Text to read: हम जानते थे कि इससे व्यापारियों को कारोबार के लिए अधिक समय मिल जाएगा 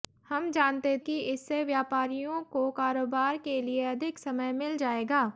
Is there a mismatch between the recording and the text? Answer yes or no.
yes